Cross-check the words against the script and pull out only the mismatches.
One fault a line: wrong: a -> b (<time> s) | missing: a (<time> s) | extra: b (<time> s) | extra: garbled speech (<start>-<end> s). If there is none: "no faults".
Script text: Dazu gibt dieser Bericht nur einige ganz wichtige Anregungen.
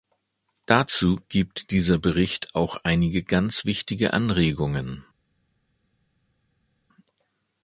wrong: nur -> auch (2.5 s)